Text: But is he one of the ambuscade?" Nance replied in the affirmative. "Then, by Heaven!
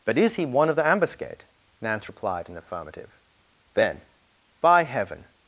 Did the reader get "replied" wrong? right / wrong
right